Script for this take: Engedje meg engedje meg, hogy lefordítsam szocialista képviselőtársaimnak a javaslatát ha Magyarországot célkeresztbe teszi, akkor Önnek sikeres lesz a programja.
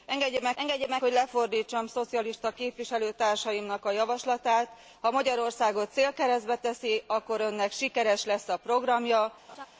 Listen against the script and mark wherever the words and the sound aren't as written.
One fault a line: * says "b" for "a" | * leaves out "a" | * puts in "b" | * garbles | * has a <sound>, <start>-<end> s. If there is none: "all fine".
* has a laugh, 9.5-9.7 s